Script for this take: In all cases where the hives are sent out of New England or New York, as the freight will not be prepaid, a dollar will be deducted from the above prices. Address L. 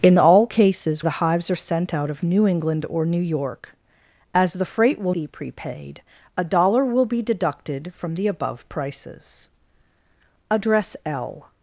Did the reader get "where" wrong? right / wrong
wrong